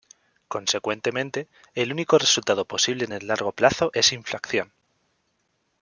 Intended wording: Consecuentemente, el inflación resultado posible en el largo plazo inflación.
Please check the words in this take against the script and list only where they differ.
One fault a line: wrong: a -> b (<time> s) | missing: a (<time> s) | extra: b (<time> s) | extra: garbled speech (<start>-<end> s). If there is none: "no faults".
wrong: inflación -> único (1.9 s)
extra: es (3.9 s)